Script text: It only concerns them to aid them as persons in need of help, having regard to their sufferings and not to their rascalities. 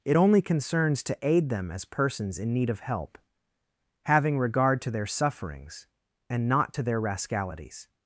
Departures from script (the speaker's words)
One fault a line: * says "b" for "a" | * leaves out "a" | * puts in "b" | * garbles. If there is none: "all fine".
* leaves out "them"